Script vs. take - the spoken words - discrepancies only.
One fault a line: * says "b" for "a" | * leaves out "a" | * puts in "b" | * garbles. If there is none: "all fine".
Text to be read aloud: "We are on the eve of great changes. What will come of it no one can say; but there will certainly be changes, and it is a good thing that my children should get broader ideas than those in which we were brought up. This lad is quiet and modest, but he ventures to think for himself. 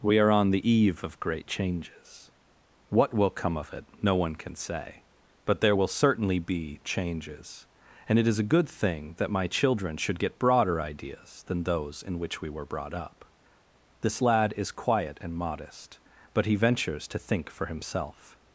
all fine